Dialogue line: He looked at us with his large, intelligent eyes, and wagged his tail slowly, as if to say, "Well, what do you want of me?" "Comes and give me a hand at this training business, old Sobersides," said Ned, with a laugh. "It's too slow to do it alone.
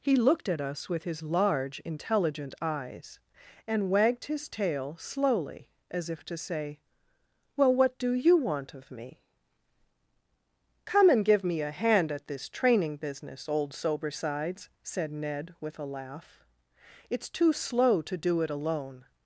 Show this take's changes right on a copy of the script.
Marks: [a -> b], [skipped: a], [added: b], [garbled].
He looked at us with his large, intelligent eyes, and wagged his tail slowly, as if to say, "Well, what do you want of me?" ["Comes -> Come] and give me a hand at this training business, old Sobersides," said Ned, with a laugh. "It's too slow to do it alone.